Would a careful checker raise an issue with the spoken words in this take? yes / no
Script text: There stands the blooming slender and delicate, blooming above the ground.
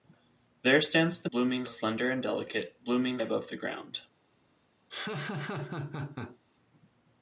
no